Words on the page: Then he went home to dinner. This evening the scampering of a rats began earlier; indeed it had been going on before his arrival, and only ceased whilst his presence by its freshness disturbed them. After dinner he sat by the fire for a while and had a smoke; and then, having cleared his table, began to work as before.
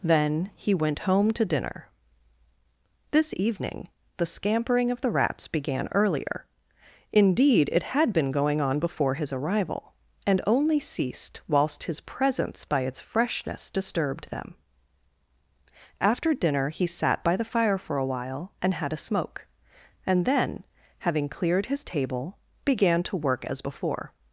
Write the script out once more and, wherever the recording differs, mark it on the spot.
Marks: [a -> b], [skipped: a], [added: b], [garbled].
Then he went home to dinner. This evening the scampering of [a -> the] rats began earlier; indeed it had been going on before his arrival, and only ceased whilst his presence by its freshness disturbed them. After dinner he sat by the fire for a while and had a smoke; and then, having cleared his table, began to work as before.